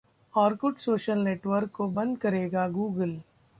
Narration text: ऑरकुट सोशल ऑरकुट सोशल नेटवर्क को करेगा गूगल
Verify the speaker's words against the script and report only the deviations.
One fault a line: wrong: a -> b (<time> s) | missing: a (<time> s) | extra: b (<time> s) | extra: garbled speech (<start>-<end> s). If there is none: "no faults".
missing: ऑरकुट सोशल (1.2 s)
extra: बंद (1.9 s)